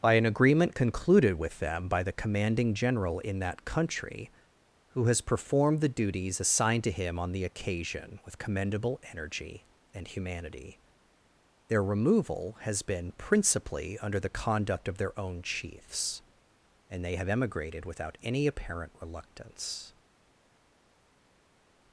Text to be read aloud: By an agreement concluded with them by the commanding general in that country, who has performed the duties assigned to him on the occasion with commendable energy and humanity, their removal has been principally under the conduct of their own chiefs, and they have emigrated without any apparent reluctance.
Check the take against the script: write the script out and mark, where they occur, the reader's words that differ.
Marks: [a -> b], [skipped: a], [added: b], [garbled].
By an agreement concluded with them by the commanding general in that country, who has performed the duties assigned to him on the occasion with commendable energy and humanity, their removal has been principally under the conduct of their own chiefs, and they have emigrated without any apparent reluctance.